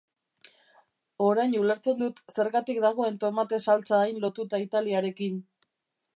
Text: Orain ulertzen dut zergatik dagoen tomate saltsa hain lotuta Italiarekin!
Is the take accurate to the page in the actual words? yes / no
yes